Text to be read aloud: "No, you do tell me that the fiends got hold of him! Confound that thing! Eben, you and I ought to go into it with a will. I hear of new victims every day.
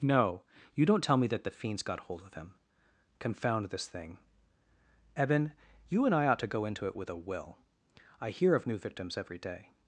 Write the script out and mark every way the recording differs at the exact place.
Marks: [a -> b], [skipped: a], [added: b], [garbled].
"No, you [do -> don't] tell me that the fiends got hold of him! Confound [that -> this] thing! Eben, you and I ought to go into it with a will. I hear of new victims every day.